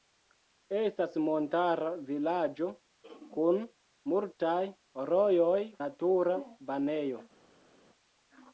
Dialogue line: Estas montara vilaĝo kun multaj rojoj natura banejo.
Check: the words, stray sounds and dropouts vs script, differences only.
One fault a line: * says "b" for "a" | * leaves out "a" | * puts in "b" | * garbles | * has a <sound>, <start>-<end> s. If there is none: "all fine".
all fine